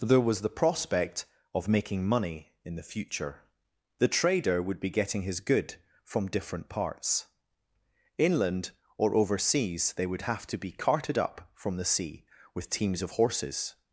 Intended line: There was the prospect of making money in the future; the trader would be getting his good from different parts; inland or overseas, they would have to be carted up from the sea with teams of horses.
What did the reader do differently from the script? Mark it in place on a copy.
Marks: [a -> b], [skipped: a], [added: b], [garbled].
There was the prospect of making money in the future; the trader would be getting his good from different parts; inland or overseas, they would have to be carted up from the sea with teams of horses.